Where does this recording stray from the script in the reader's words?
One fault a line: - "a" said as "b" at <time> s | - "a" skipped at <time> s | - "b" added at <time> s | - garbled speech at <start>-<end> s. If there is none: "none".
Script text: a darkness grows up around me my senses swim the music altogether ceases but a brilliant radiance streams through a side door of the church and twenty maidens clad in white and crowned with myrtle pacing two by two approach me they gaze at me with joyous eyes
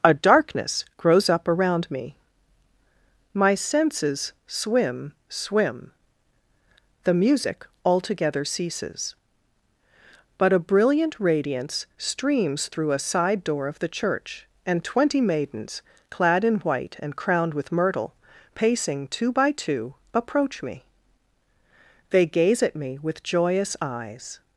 - "swim" added at 5.3 s